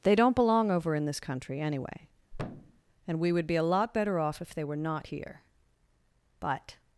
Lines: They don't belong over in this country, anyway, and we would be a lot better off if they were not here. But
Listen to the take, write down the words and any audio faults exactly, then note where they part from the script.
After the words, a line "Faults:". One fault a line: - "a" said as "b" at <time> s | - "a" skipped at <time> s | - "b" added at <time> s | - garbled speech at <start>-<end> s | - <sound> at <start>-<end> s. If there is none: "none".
They don't belong over in this country, anyway, and we would be a lot better off if they were not here. But
Faults:
- thud at 2.3-2.8 s